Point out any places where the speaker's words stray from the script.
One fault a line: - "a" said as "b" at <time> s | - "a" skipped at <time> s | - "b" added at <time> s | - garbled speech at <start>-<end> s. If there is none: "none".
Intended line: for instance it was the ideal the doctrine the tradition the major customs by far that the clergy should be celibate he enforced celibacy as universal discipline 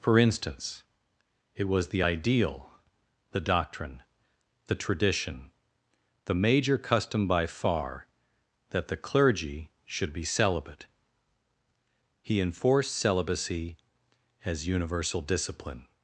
- "customs" said as "custom" at 6.8 s